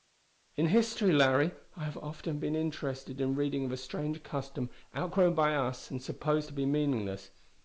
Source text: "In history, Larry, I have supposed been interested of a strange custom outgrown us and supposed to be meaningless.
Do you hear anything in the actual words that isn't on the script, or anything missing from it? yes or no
yes